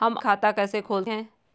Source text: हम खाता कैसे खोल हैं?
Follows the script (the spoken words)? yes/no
yes